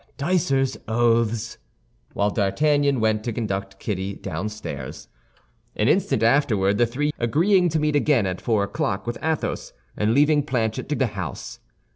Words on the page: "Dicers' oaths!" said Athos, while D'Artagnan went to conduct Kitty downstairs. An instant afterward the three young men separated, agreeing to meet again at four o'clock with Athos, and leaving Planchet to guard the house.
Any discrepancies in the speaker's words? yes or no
yes